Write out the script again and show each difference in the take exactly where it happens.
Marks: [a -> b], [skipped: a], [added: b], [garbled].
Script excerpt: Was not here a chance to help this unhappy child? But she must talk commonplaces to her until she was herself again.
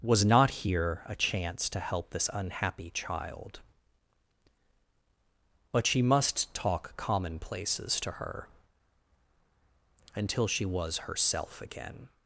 Was not here a chance to help this unhappy child? But she must talk commonplaces to her until she was herself again.